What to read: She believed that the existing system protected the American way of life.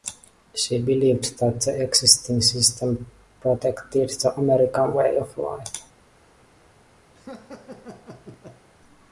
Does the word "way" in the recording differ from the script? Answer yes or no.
no